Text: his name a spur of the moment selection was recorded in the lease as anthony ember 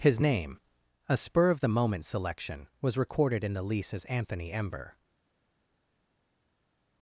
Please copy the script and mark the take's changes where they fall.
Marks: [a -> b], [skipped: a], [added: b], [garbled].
his name a spur of the moment selection was recorded in the lease as anthony ember